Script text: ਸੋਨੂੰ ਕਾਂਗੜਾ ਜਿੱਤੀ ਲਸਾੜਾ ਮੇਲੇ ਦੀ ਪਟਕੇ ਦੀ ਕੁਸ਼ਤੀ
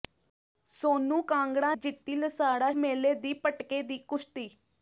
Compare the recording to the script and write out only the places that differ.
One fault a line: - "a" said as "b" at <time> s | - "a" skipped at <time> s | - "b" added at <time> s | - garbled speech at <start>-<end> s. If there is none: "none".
none